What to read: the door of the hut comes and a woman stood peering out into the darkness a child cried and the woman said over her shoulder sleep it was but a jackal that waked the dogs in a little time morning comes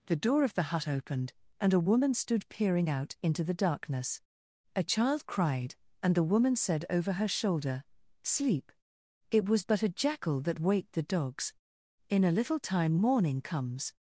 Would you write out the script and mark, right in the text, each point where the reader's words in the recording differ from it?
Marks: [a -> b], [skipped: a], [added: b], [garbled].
the door of the hut [comes -> opened] and a woman stood peering out into the darkness a child cried and the woman said over her shoulder sleep it was but a jackal that waked the dogs in a little time morning comes